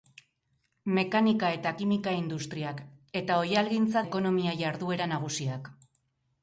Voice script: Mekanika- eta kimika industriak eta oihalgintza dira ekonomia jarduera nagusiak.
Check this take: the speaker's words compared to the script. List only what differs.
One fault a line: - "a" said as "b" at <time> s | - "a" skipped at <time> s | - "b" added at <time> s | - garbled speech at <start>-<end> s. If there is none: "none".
- "dira" skipped at 4.1 s